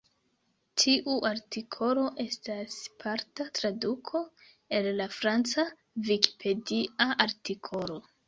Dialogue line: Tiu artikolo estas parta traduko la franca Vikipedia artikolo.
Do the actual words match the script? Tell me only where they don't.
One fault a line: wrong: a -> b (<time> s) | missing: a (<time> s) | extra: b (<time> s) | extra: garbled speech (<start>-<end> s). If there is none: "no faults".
extra: el (4.8 s)